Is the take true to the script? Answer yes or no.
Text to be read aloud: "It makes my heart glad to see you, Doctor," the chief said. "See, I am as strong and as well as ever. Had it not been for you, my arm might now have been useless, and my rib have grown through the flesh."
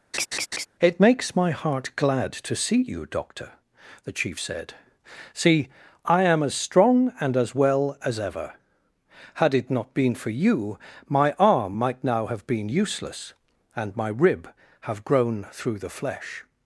yes